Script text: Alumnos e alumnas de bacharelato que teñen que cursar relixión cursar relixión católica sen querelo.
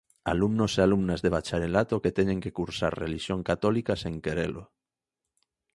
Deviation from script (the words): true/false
true